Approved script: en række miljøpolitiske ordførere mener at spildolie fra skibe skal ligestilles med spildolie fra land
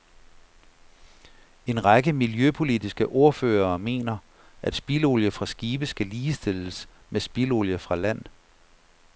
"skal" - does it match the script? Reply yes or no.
yes